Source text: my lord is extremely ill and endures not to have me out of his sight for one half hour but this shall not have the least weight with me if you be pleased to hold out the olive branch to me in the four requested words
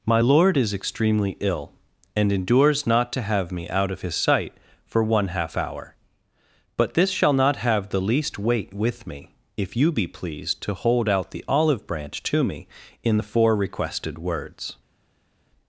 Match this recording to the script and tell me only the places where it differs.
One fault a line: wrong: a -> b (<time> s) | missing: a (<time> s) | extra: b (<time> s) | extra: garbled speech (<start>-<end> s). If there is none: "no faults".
no faults